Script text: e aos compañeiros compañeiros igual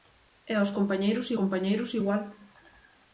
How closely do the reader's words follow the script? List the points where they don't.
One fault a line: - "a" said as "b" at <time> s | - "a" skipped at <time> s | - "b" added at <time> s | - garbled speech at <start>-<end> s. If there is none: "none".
none